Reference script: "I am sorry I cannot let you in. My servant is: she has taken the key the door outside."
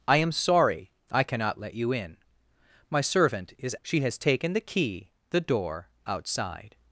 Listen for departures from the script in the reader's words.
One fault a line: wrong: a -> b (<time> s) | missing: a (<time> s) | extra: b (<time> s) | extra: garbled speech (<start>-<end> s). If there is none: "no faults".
no faults